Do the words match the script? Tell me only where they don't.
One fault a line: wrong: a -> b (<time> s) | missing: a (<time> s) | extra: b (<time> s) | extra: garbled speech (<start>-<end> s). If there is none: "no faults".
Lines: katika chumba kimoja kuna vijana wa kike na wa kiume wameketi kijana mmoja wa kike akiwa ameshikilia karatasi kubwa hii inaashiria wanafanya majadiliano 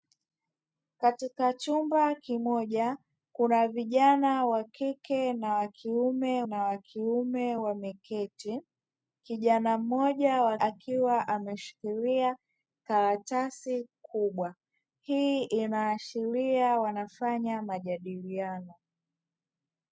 extra: na wa kiume (6.4 s)
missing: kike (10.6 s)